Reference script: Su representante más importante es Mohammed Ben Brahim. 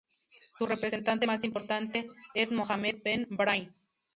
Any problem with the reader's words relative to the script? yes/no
no